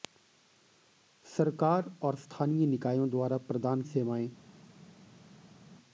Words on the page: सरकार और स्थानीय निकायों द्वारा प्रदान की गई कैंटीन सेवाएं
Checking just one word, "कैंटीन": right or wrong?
wrong